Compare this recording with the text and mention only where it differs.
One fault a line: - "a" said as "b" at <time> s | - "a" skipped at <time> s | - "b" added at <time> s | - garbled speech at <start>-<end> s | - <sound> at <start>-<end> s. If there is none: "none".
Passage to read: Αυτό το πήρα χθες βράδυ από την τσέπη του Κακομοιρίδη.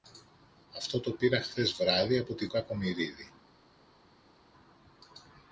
- "τσέπη του" skipped at 2.5 s